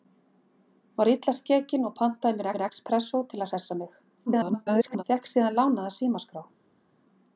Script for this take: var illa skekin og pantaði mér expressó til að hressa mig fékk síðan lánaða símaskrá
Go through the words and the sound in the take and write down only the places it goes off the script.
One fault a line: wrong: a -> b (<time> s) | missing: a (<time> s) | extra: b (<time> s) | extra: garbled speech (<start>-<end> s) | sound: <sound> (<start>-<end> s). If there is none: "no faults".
extra: mér (2.5 s)
extra: garbled speech (4.3-5.0 s)